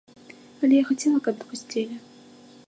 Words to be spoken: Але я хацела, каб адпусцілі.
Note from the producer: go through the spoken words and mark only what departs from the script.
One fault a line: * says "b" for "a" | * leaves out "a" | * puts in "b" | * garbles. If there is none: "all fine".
all fine